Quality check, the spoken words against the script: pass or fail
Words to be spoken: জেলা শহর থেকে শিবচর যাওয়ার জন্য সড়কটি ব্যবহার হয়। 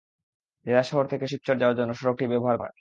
pass